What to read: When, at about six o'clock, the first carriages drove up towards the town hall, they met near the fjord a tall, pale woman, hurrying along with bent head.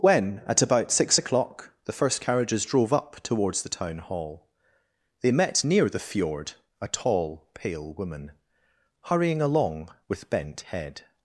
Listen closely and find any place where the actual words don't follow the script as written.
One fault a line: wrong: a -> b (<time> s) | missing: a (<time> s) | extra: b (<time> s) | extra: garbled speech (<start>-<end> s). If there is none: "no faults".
no faults